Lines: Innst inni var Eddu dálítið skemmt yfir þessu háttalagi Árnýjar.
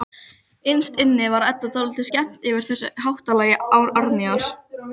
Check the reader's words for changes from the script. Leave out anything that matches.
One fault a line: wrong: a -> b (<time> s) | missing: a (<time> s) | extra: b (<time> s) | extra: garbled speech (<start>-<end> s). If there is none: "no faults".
no faults